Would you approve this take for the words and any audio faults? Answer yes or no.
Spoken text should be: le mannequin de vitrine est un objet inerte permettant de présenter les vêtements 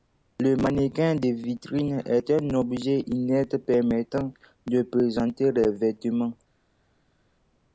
yes